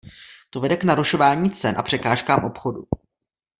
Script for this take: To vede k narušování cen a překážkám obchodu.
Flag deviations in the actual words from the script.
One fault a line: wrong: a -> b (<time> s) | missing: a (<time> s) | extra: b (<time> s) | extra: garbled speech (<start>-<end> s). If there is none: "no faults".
no faults